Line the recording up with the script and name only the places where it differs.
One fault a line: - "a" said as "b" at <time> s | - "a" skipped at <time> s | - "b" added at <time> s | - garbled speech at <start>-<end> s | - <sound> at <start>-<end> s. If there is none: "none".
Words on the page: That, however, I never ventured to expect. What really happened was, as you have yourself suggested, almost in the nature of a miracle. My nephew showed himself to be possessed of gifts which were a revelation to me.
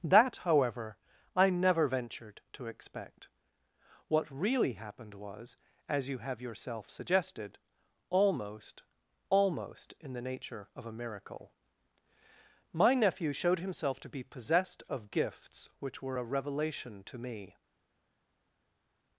- "almost" added at 9.3 s